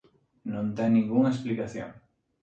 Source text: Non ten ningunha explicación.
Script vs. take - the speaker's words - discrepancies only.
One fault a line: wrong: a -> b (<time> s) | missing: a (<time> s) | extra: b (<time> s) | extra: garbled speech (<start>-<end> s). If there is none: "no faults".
no faults